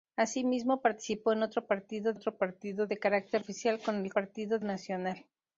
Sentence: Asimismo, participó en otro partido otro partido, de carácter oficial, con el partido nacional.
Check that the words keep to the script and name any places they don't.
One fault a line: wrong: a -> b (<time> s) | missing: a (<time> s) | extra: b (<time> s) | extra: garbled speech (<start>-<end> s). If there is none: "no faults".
no faults